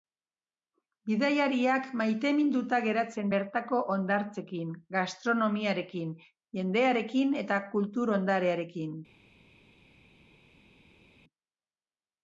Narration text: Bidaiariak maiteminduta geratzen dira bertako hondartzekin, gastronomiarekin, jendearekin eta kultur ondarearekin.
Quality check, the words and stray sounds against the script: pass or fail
fail